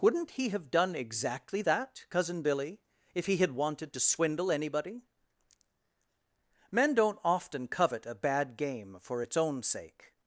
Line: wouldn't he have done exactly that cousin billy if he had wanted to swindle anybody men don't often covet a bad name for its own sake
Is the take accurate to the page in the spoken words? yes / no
no